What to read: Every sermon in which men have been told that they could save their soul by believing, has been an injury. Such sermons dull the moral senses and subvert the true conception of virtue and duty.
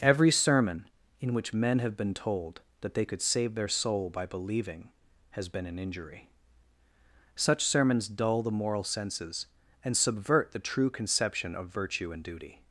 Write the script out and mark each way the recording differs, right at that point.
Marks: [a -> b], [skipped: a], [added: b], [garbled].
Every sermon in which men have been told that they could save their soul by believing, has been an injury. Such sermons dull the moral senses and subvert the true conception of virtue and duty.